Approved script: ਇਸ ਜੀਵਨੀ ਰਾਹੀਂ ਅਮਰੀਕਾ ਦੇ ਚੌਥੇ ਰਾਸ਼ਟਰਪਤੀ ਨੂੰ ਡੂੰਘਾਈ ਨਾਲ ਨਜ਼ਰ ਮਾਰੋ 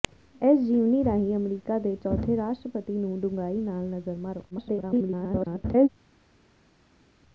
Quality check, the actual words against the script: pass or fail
fail